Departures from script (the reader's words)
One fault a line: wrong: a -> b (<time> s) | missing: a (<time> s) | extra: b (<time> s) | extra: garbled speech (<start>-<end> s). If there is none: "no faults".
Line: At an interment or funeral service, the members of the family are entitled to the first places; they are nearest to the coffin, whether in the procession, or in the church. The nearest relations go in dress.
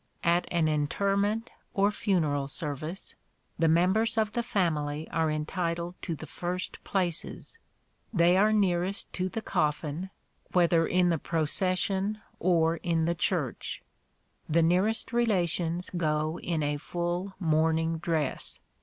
extra: a full mourning (16.6 s)